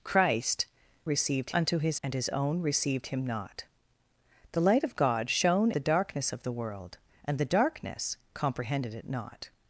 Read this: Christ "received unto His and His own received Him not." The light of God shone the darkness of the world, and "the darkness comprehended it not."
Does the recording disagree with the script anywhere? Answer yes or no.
no